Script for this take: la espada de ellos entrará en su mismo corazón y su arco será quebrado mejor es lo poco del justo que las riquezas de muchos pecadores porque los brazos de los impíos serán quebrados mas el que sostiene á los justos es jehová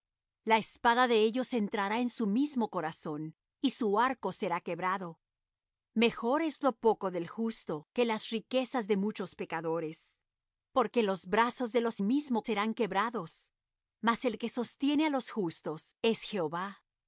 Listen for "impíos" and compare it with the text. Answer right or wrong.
wrong